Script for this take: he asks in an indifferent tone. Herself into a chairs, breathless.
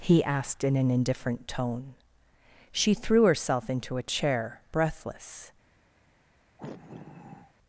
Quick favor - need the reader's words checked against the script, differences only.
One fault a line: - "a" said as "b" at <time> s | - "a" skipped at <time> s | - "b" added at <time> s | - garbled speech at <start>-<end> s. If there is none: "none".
- "asks" said as "asked" at 0.2 s
- "She threw" added at 2.7 s
- "chairs" said as "chair" at 4.0 s